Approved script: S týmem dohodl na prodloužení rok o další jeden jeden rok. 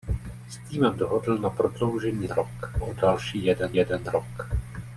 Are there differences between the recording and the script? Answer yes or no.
no